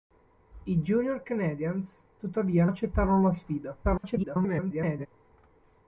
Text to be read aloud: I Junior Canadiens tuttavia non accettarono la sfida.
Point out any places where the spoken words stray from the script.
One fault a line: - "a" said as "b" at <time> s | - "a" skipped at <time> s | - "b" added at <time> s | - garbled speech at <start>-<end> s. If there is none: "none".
- "non" skipped at 2.6 s
- garbled speech at 3.8-5.1 s